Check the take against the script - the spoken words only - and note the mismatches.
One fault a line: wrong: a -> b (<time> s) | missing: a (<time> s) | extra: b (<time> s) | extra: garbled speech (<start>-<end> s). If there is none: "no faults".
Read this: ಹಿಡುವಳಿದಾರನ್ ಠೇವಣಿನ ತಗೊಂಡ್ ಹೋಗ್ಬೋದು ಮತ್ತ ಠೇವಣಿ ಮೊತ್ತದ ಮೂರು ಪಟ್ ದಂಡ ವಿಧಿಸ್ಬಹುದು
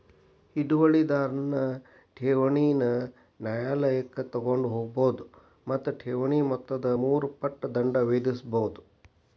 extra: ನ್ಯಾಯಾಲಯಕ್ಕ (3.4 s)